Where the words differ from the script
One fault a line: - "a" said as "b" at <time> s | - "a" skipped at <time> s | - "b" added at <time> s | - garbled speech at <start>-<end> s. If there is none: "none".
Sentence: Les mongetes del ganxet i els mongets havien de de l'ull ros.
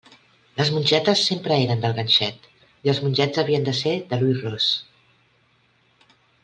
- "sempre eren" added at 1.3 s
- "ser" added at 3.8 s